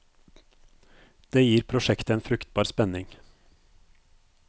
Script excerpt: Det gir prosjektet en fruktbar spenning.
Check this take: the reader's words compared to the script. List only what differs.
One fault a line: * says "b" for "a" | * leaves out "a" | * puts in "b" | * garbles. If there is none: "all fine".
all fine